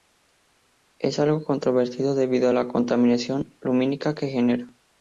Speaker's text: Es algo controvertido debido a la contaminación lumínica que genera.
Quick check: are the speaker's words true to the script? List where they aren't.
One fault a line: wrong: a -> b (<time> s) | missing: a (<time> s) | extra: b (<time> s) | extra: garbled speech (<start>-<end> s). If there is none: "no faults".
no faults